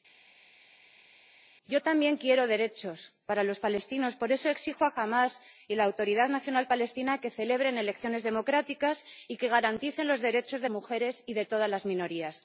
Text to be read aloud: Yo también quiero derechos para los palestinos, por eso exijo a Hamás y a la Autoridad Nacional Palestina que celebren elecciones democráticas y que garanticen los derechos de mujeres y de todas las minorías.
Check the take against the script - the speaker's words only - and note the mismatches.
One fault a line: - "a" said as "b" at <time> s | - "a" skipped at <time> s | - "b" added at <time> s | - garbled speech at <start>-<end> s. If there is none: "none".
none